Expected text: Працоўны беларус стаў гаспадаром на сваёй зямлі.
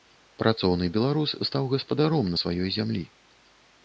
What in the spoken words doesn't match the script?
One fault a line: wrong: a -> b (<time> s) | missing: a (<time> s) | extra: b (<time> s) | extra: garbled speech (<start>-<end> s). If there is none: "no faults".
no faults